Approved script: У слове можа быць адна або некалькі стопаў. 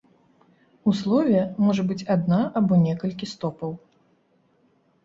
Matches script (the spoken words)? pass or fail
pass